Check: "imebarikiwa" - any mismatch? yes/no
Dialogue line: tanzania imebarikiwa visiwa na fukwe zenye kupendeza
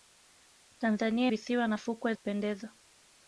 yes